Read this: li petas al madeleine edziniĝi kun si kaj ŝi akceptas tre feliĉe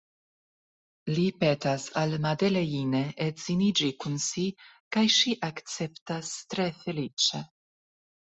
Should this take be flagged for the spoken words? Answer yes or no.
no